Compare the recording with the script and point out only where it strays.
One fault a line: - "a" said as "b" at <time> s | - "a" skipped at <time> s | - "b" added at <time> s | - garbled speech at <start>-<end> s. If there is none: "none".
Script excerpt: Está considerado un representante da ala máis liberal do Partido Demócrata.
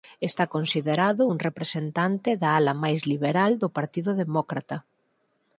none